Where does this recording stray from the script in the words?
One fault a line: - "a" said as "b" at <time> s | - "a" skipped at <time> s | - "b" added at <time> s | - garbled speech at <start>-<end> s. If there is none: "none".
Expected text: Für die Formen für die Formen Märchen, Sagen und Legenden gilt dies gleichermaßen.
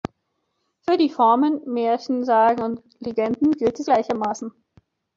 - "für die Formen" skipped at 1.6 s